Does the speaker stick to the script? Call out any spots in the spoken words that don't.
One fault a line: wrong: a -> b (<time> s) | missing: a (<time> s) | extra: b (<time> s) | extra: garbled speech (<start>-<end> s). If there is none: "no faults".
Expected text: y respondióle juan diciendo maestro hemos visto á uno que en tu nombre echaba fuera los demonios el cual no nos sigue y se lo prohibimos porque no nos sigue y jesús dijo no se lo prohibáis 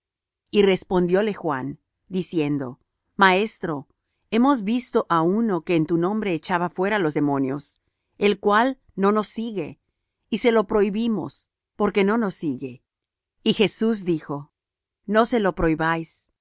no faults